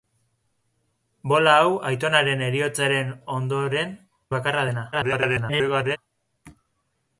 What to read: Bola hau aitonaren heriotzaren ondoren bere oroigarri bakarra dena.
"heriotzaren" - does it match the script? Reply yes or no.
yes